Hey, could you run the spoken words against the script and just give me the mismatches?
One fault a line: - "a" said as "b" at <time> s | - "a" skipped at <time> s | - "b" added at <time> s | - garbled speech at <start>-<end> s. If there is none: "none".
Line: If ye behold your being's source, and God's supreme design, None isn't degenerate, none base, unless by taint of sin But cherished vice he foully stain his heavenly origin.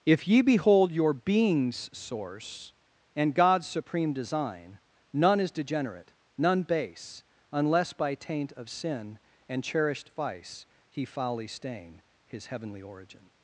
- "isn't" said as "is" at 5.4 s
- "But" said as "And" at 9.5 s